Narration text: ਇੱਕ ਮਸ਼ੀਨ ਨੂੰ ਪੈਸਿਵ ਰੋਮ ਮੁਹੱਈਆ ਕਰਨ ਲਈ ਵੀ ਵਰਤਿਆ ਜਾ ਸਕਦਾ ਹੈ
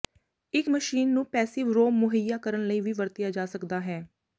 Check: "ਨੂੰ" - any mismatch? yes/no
no